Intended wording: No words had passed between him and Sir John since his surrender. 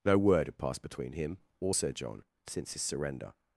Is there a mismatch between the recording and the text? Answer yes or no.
yes